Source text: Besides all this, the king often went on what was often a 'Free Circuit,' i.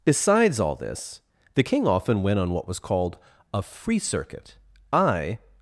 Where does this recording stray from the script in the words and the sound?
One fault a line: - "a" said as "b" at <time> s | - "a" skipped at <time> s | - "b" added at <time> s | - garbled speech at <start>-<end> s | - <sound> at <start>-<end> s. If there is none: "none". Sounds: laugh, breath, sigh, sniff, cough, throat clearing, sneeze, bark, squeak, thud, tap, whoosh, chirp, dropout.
- "often" said as "called" at 2.8 s